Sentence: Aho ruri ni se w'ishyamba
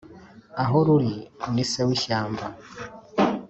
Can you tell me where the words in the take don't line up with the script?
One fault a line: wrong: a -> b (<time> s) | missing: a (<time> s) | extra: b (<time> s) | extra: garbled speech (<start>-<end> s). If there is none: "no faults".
no faults